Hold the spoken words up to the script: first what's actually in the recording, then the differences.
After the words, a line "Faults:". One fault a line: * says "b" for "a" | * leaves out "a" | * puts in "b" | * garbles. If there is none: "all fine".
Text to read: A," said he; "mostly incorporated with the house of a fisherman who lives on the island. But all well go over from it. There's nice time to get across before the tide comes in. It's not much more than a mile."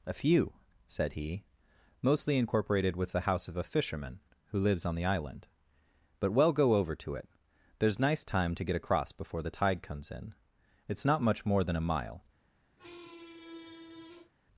A few," said he; "mostly incorporated with the house of a fisherman who lives on the island. But well go over to it. There's nice time to get across before the tide comes in. It's not much more than a mile."
Faults:
* puts in "few"
* leaves out "all"
* says "to" for "from"